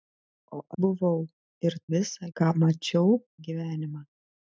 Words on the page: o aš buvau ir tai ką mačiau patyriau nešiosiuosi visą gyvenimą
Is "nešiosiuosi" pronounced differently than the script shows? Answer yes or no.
yes